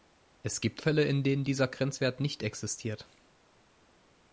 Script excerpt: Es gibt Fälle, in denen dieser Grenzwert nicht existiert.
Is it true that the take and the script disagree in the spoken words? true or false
false